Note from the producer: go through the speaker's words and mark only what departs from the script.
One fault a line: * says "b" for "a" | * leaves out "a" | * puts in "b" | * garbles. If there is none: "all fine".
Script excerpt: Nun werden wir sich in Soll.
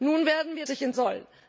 all fine